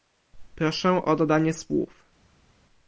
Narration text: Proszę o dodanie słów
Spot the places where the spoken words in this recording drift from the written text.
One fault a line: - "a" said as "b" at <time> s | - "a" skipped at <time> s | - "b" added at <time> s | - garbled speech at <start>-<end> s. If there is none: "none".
none